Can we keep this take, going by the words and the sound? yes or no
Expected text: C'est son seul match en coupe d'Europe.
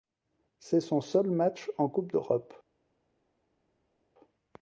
yes